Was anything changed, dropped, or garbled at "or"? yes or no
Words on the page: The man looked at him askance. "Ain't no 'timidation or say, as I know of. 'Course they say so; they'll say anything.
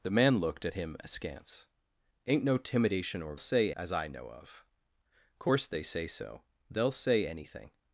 no